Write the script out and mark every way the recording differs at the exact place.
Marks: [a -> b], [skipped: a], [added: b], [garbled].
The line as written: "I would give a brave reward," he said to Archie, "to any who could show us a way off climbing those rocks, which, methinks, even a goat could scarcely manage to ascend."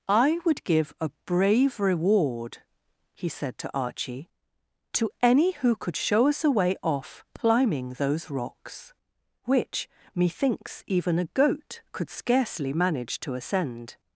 "I would give a brave reward," he said to Archie, "to any who could show us a way off climbing those rocks, which, methinks, even a goat could scarcely manage to ascend."